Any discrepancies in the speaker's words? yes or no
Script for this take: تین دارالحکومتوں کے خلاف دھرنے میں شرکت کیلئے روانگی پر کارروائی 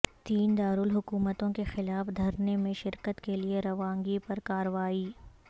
no